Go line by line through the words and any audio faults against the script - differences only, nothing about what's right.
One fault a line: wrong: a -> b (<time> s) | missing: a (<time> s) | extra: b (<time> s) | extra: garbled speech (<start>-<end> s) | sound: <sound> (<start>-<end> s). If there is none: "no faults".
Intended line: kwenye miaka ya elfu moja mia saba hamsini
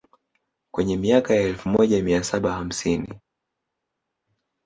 no faults